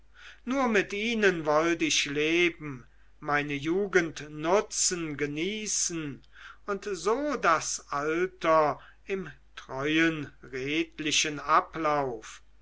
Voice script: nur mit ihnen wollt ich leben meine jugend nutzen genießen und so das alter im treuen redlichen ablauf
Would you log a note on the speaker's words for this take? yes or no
no